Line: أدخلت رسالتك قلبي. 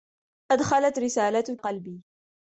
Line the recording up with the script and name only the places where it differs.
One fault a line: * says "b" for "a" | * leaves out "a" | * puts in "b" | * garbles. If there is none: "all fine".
all fine